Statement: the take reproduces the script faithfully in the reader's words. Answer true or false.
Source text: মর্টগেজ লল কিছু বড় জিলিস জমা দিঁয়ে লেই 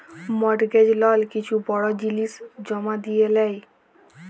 true